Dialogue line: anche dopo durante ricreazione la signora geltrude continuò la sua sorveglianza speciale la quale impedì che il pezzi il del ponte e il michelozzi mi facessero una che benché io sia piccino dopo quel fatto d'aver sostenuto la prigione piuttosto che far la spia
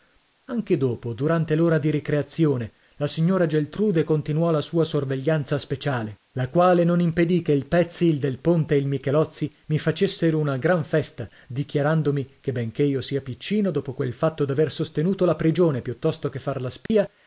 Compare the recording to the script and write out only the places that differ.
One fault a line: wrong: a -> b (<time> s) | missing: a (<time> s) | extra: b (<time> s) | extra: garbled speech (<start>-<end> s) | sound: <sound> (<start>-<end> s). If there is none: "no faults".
extra: l'ora di (1.6 s)
extra: non (6.8 s)
extra: gran festa dichiarandomi (10.6 s)
sound: dropout (16.9-16.9 s)